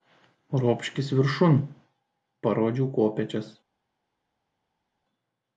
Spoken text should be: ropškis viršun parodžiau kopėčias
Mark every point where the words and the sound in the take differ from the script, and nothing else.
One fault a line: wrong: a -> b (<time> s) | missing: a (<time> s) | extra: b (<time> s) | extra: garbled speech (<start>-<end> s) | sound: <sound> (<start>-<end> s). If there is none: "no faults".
no faults